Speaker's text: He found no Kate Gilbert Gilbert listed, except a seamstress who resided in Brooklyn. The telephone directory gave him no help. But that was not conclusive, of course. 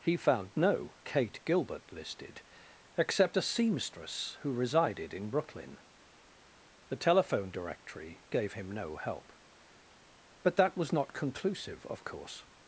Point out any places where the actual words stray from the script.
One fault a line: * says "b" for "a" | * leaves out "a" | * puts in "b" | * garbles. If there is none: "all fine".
* leaves out "Gilbert"